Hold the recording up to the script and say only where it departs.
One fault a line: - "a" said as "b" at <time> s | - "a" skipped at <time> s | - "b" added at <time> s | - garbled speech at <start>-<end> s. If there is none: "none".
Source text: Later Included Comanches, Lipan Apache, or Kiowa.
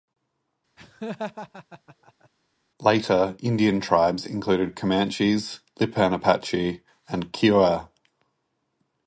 - "Indian tribes" added at 3.4 s
- "or" said as "and" at 7.1 s